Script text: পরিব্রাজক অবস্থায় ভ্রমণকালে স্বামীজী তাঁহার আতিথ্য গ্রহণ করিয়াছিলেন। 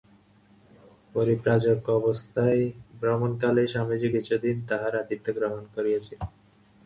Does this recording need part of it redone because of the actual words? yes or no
yes